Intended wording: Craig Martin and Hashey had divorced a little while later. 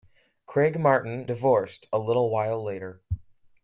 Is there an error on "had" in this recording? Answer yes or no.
yes